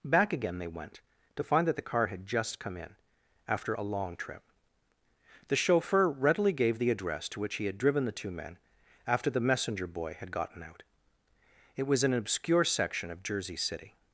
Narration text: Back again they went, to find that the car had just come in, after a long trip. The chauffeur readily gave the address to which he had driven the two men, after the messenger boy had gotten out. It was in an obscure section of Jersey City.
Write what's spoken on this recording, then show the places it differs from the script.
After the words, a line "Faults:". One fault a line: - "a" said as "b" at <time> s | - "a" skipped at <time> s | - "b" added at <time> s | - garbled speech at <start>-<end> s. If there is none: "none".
Back again they went, to find that the car had just come in, after a long trip. The chauffeur readily gave the address to which he had driven the two men, after the messenger boy had gotten out. It was an obscure section of Jersey City.
Faults:
- "in" skipped at 12.0 s